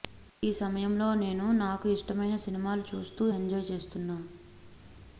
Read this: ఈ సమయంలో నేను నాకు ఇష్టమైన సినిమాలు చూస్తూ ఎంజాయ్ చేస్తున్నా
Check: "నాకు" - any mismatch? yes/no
no